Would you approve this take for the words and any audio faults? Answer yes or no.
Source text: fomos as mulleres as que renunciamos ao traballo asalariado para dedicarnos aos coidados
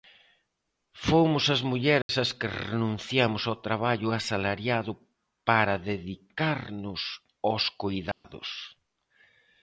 no